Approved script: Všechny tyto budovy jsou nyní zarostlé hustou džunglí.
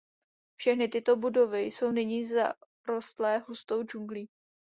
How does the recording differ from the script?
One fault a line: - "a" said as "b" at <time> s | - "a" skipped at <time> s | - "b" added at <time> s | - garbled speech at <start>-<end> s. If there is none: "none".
none